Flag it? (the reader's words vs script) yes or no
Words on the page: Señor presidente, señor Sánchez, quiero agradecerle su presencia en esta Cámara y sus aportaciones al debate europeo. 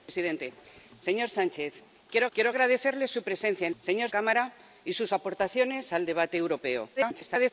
yes